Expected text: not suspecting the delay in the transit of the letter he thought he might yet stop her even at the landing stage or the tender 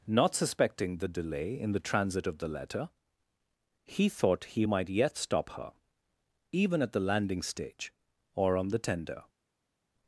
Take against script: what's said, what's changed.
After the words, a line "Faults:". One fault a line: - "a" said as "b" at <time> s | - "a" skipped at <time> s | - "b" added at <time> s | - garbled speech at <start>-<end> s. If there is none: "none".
not suspecting the delay in the transit of the letter he thought he might yet stop her even at the landing stage or on the tender
Faults:
- "on" added at 8.6 s